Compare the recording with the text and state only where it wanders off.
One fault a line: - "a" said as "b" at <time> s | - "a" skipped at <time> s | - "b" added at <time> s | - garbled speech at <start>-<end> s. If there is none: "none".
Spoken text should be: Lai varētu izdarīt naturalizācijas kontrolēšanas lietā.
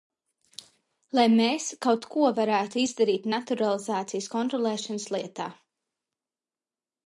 - "mēs kaut ko" added at 1.3 s